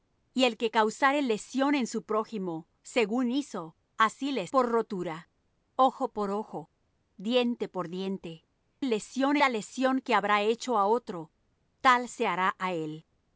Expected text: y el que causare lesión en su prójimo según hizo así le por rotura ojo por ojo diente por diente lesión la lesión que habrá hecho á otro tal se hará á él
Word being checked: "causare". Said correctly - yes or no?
yes